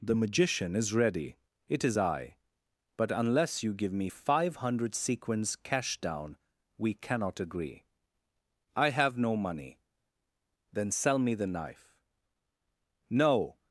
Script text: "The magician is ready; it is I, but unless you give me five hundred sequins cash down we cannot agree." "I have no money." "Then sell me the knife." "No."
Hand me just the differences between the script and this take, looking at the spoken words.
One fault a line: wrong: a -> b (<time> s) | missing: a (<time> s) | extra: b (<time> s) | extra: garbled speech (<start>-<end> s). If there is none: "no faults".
no faults